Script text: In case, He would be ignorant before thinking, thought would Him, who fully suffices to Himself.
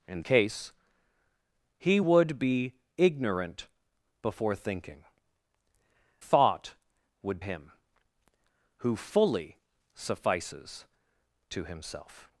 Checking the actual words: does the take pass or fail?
pass